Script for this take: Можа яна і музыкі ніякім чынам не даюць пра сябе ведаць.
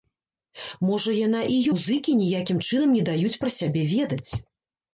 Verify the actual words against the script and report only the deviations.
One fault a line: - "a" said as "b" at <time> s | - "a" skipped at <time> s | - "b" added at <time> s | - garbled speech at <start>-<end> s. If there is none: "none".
none